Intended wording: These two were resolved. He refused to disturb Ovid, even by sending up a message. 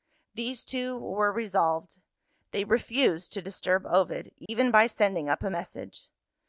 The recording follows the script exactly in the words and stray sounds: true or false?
false